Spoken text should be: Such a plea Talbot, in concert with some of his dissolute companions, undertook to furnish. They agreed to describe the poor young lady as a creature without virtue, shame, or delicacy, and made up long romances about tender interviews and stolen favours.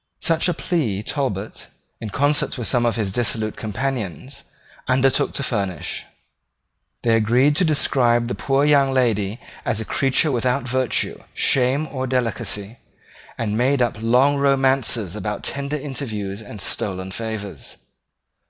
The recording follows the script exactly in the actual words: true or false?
true